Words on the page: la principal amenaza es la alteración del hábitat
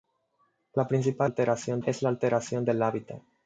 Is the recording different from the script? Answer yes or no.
yes